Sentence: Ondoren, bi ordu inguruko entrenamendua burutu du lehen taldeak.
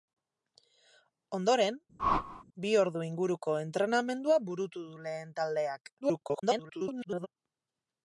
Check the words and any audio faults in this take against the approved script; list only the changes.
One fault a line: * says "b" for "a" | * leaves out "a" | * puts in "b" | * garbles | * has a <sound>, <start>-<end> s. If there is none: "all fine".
* has a whoosh, 2.0-2.4 s
* garbles